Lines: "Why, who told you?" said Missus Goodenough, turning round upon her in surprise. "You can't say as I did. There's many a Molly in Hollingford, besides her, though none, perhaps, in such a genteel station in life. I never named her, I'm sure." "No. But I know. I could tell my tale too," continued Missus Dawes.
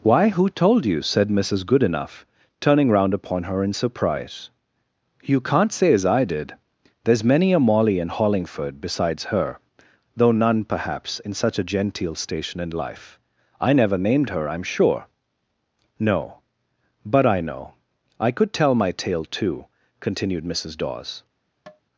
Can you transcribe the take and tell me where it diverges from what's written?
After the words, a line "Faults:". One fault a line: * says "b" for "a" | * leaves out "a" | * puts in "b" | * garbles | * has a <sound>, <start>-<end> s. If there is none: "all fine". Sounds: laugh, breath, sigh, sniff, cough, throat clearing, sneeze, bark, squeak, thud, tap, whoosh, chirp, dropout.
"Why, who told you?" said Missus Goodenough, turning round upon her in surprise. "You can't say as I did. There's many a Molly in Hollingford, besides her, though none, perhaps, in such a genteel station in life. I never named her, I'm sure." "No. But I know. I could tell my tale too," continued Missus Dawes.
Faults:
* has a tap, 21.7-21.8 s